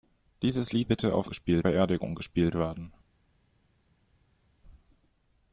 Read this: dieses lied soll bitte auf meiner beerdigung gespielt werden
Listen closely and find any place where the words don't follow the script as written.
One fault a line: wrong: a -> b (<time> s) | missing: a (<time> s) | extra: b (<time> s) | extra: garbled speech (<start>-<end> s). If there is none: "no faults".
missing: soll (0.9 s)
wrong: meiner -> gespielt (1.3 s)